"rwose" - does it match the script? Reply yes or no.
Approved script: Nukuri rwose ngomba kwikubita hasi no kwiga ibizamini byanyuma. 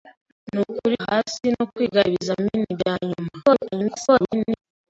no